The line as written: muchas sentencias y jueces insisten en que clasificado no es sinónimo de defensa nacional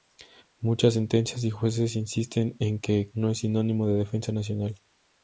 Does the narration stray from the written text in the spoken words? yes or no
yes